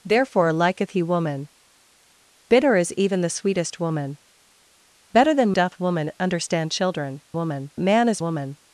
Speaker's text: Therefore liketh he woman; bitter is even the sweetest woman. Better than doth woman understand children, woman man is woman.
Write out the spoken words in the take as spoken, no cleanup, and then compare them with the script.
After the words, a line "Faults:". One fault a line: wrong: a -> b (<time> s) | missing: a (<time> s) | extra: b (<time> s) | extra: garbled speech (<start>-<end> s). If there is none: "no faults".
Therefore liketh he woman; bitter is even the sweetest woman. Better than doth woman understand children, woman man is woman.
Faults:
no faults